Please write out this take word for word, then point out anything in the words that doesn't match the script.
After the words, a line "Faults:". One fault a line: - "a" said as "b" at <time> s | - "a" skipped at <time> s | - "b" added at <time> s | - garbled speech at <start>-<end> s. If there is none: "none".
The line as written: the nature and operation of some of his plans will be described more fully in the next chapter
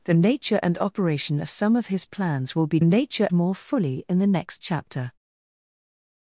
the nature and operation of some of his plans will be nature more fully in the next chapter
Faults:
- "described" said as "nature" at 2.8 s